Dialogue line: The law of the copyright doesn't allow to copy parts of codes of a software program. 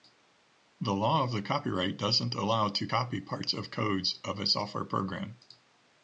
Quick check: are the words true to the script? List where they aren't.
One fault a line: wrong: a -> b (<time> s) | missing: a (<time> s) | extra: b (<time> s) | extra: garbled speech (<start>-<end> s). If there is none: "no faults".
no faults